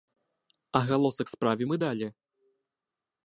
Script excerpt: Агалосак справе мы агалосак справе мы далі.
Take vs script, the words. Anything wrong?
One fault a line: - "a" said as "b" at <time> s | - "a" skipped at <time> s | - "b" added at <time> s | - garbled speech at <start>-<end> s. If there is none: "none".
- "агалосак справе мы" skipped at 1.8 s